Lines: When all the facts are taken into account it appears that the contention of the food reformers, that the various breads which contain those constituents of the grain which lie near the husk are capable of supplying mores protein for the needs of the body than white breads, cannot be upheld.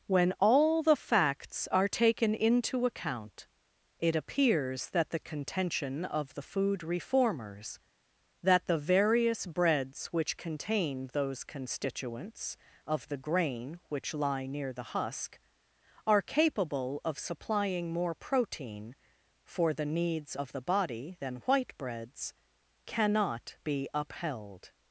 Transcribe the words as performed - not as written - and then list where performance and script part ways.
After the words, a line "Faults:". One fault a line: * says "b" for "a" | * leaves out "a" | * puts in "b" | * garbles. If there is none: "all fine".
When all the facts are taken into account it appears that the contention of the food reformers, that the various breads which contain those constituents of the grain which lie near the husk are capable of supplying more protein for the needs of the body than white breads, cannot be upheld.
Faults:
* says "more" for "mores"